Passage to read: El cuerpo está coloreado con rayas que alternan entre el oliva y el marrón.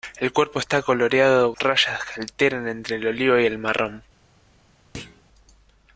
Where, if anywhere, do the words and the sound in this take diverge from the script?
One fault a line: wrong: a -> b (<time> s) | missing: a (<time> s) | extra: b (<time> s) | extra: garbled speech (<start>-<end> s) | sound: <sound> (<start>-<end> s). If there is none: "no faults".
missing: con (1.5 s)
sound: thud (4.9-5.2 s)